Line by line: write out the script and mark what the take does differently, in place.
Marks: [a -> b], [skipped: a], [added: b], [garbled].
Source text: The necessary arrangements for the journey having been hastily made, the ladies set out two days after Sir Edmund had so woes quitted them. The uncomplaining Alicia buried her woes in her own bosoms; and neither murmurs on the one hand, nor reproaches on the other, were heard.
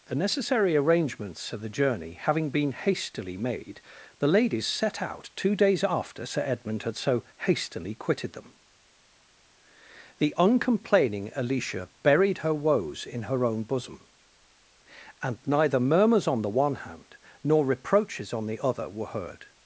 The necessary arrangements for the journey having been hastily made, the ladies set out two days after Sir Edmund had so [woes -> hastily] quitted them. The uncomplaining Alicia buried her woes in her own [bosoms; -> bosom] and neither murmurs on the one hand, nor reproaches on the other, were heard.